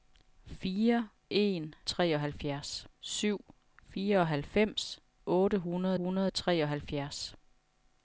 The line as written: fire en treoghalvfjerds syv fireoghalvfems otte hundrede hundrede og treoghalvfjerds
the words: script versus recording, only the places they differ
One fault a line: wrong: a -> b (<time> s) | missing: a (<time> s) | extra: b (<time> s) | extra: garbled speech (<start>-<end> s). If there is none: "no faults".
no faults